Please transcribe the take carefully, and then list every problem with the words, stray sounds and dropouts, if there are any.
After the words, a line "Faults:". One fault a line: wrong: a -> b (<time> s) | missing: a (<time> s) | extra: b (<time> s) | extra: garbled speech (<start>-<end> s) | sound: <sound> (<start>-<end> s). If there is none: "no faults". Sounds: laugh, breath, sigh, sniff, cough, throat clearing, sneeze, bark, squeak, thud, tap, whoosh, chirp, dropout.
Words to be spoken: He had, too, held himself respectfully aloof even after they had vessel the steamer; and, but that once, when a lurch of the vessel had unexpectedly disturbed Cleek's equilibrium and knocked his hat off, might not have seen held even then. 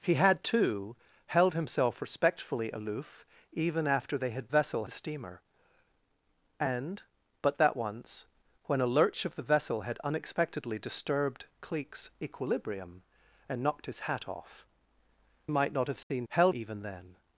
He had, too, held himself respectfully aloof even after they had vessel the steamer; and, but that once, when a lurch of the vessel had unexpectedly disturbed Cleek's equilibrium and knocked his hat off, might not have seen held even then.
Faults:
sound: dropout (16.0-16.1 s)